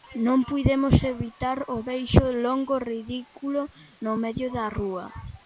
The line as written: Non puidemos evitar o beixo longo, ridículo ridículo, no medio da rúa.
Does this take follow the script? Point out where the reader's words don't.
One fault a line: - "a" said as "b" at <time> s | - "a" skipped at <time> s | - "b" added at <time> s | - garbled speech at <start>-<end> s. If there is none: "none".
- "ridículo" skipped at 3.6 s